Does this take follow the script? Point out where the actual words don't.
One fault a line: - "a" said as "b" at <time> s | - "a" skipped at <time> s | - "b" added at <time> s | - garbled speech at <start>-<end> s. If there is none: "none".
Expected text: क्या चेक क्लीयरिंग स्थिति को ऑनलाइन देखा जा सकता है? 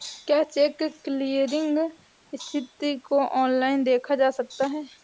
none